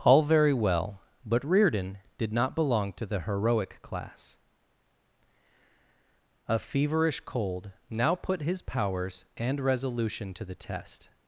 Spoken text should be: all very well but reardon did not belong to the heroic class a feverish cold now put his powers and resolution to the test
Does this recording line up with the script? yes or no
yes